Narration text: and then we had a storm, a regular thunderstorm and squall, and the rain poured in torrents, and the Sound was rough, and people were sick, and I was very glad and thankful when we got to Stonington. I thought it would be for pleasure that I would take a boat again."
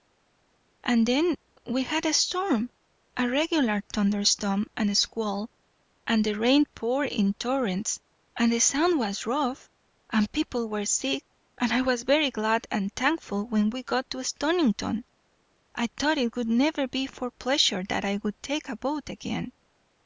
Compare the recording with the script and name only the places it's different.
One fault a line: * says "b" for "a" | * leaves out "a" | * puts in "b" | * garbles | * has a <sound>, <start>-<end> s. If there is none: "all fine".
* puts in "never"